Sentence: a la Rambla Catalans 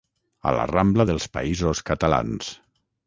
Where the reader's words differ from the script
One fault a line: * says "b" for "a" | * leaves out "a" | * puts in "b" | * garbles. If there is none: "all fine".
* puts in "dels Països"